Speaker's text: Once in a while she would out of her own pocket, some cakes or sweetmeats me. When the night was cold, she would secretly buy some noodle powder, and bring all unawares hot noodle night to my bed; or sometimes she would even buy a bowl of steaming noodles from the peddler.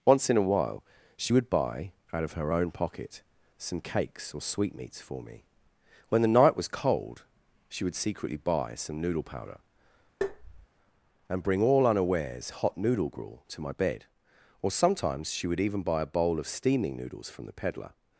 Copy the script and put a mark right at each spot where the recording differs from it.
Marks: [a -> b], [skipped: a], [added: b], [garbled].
Once in a while she would [added: buy] out of her own pocket, some cakes or sweetmeats [added: for] me. When the night was cold, she would secretly buy some noodle powder, and bring all unawares hot noodle [night -> gruel] to my bed; or sometimes she would even buy a bowl of steaming noodles from the peddler.